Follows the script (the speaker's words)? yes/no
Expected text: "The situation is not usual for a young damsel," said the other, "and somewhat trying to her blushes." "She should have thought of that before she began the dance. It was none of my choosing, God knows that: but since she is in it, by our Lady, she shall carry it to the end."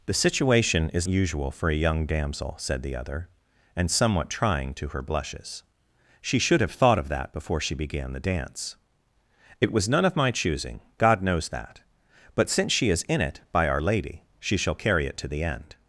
no